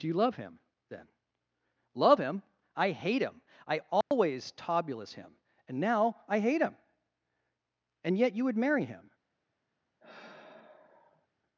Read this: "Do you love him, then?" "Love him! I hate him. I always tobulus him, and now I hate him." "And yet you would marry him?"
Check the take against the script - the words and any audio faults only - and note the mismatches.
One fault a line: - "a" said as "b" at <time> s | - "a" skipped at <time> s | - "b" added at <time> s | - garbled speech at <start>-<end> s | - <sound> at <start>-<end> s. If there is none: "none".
- dropout at 4.0-4.1 s
- sigh at 10.0-11.3 s